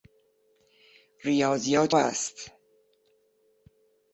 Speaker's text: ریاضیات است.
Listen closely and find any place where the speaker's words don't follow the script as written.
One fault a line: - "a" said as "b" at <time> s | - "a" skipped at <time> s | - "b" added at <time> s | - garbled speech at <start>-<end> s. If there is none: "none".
none